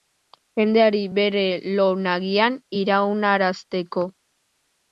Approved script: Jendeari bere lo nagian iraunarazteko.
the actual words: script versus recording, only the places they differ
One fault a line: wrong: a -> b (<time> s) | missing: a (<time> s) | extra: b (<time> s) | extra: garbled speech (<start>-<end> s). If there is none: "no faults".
no faults